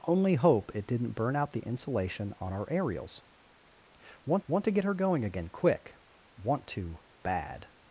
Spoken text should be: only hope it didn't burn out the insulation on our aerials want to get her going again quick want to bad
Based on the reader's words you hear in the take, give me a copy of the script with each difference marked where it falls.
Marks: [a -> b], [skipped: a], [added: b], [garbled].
only hope it didn't burn out the insulation on our aerials want [added: want] to get her going again quick want to bad